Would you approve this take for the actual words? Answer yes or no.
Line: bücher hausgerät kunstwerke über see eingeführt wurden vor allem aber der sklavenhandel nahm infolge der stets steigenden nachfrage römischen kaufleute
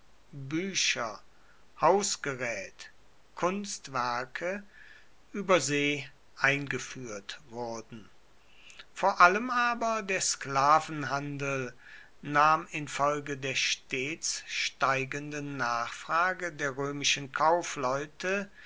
no